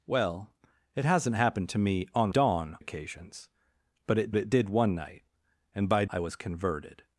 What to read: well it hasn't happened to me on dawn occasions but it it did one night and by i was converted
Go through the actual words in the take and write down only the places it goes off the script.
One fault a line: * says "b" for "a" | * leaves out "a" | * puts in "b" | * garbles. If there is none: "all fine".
all fine